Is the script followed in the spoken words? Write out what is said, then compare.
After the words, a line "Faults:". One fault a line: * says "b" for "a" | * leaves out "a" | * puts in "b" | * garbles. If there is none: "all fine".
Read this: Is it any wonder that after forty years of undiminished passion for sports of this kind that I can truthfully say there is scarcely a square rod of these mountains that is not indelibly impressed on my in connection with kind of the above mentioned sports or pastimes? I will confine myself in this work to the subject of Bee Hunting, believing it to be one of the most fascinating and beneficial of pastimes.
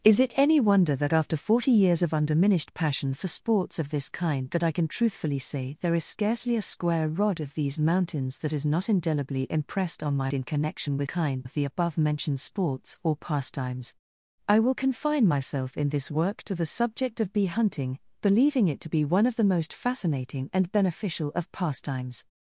Is it any wonder that after forty years of undiminished passion for sports of this kind that I can truthfully say there is scarcely a square rod of these mountains that is not indelibly impressed on my in connection with kind of the above mentioned sports or pastimes? I will confine myself in this work to the subject of Bee Hunting, believing it to be one of the most fascinating and beneficial of pastimes.
Faults:
all fine